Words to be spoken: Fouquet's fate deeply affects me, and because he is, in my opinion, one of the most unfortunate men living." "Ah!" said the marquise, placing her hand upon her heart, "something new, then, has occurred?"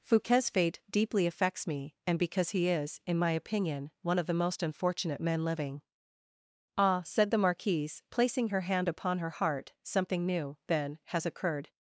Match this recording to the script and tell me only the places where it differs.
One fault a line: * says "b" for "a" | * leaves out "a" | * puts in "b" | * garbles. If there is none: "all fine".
all fine